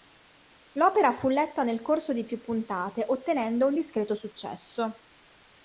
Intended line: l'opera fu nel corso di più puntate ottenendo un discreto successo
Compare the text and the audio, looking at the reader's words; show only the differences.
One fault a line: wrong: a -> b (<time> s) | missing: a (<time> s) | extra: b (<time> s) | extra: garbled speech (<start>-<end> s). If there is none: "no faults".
extra: letta (1.3 s)